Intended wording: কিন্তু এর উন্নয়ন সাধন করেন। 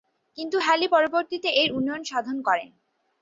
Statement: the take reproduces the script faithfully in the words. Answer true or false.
false